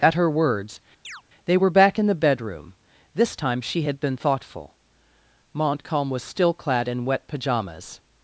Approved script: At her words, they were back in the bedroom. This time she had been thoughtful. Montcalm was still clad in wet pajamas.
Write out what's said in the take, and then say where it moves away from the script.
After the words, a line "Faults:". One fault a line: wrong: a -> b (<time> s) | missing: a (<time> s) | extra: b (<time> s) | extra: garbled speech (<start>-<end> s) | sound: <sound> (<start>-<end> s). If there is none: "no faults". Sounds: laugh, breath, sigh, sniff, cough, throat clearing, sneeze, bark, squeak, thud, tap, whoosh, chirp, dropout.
At her words, they were back in the bedroom. This time she had been thoughtful. Montcalm was still clad in wet pajamas.
Faults:
sound: chirp (1.0-1.2 s)